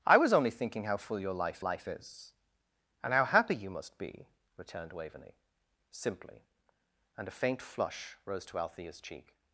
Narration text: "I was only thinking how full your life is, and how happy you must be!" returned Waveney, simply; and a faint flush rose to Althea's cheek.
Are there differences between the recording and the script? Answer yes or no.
yes